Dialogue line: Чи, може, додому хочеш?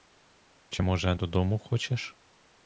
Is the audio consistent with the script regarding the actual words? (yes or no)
yes